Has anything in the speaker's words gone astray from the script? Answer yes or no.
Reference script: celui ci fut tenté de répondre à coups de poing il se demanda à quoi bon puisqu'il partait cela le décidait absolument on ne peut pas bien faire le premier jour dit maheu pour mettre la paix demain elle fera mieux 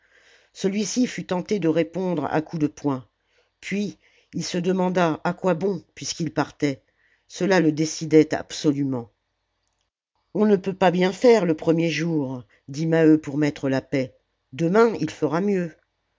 yes